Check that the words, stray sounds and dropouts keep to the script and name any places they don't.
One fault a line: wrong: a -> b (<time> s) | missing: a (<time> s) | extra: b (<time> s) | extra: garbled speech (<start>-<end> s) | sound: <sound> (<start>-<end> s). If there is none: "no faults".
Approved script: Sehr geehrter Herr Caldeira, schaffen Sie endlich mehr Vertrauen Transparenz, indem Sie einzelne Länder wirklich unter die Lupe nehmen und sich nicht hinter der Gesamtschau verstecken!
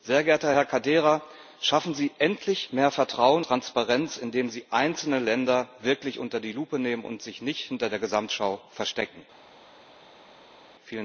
no faults